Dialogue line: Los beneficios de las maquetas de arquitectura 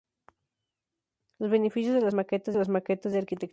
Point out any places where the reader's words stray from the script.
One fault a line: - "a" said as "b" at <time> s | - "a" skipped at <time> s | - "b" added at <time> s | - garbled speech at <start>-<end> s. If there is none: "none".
- "las maquetas" added at 2.5 s